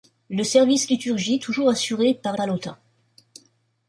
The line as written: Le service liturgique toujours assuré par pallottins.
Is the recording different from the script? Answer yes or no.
no